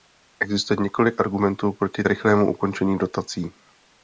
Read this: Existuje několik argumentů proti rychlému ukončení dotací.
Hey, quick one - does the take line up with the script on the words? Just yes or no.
yes